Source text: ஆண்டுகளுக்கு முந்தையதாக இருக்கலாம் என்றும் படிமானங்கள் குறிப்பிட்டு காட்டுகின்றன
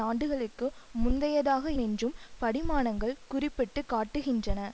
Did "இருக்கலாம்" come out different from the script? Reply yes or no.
yes